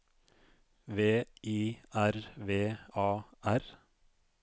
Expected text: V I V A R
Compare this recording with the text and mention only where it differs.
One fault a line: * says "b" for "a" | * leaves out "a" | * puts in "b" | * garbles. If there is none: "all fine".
* puts in "R"